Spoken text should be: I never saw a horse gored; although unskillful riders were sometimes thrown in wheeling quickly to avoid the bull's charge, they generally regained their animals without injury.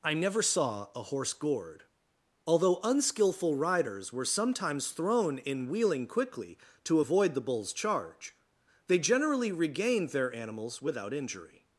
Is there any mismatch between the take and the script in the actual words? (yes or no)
no